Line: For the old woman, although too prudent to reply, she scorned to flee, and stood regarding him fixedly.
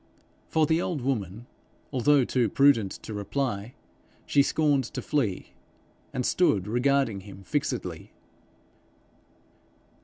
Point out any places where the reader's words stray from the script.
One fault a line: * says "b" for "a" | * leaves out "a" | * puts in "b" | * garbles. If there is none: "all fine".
all fine